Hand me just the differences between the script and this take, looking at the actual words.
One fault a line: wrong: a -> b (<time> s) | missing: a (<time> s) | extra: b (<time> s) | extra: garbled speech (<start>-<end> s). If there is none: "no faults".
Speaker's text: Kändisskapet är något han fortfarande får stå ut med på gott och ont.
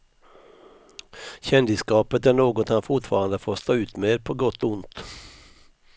no faults